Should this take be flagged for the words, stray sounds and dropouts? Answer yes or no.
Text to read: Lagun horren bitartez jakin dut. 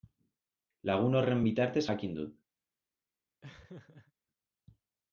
yes